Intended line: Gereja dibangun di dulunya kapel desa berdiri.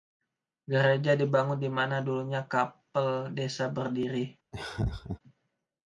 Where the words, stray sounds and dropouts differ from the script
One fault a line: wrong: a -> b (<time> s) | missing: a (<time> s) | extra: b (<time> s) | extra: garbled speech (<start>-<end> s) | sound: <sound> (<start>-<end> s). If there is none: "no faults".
extra: mana (1.7 s)
sound: laugh (4.5-5.2 s)